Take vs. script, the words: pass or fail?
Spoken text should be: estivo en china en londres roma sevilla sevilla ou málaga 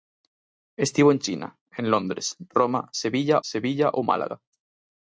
pass